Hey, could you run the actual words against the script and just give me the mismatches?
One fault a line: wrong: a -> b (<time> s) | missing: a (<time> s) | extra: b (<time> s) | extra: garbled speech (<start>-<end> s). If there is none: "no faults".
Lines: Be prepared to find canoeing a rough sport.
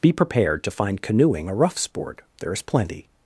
extra: There is plenty (2.4 s)